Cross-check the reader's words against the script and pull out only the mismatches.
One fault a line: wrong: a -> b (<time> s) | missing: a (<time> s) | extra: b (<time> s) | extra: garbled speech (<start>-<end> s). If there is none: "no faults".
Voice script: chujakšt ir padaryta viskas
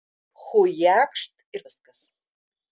missing: padaryta (1.6 s)